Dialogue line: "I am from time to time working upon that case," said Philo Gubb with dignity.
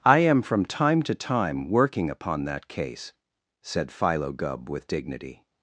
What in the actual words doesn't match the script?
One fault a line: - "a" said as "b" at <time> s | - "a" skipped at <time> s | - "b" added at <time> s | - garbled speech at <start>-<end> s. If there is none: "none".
none